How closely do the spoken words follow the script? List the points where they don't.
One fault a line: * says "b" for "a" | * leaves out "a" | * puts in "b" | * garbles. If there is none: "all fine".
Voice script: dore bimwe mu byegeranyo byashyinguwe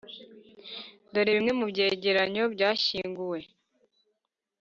all fine